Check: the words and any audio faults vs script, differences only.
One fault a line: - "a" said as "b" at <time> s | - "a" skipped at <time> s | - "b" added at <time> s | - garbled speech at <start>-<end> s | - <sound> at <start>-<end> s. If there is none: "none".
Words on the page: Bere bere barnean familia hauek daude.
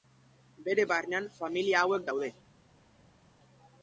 - "bere" skipped at 0.9 s